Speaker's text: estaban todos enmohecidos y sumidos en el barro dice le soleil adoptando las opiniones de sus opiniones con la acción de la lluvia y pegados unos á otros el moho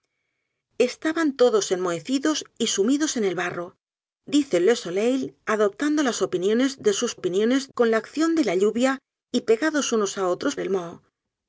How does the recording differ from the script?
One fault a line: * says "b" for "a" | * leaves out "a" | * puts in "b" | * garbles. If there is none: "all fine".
all fine